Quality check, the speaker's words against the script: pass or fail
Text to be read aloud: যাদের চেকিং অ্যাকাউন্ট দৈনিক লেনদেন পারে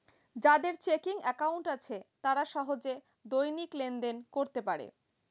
fail